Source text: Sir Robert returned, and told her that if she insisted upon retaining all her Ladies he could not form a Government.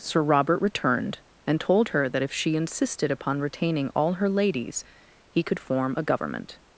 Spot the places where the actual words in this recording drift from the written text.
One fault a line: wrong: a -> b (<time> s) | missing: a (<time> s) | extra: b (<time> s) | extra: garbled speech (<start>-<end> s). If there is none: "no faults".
missing: not (5.6 s)